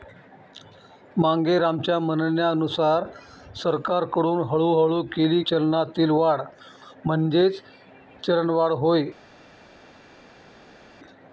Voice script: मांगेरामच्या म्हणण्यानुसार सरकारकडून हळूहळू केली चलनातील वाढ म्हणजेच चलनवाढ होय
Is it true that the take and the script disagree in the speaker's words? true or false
false